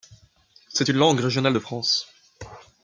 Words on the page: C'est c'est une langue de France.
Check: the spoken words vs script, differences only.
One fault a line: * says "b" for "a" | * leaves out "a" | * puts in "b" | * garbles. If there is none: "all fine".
* leaves out "c'est"
* puts in "régionale"